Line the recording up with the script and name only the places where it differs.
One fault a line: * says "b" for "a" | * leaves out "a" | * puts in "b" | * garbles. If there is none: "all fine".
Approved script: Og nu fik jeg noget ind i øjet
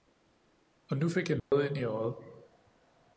all fine